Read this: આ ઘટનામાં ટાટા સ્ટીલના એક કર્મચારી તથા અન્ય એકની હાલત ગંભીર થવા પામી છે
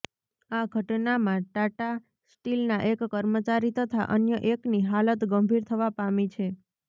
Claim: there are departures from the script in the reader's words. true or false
false